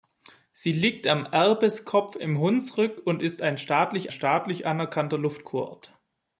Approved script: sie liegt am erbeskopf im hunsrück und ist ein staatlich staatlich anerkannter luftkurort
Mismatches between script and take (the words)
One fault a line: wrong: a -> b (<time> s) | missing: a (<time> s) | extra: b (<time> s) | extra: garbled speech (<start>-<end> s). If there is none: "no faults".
no faults